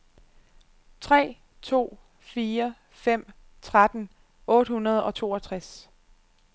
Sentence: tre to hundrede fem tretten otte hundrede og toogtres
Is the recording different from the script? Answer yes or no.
yes